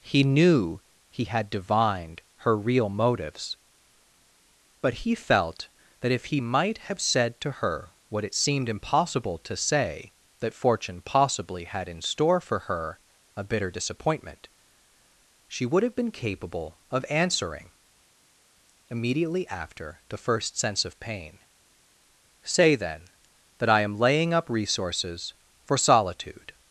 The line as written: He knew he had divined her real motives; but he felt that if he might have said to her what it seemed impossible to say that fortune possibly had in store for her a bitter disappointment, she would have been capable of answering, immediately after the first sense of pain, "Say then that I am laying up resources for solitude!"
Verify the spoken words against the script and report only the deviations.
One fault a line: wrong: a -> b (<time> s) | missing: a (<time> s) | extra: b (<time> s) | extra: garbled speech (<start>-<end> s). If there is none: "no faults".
no faults